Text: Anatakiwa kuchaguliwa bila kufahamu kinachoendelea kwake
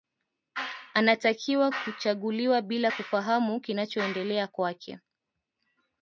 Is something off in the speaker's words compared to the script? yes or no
no